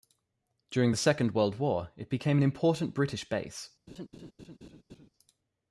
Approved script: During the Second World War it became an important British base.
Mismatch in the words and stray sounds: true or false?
true